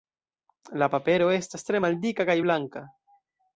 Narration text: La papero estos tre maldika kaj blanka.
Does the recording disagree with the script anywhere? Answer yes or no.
yes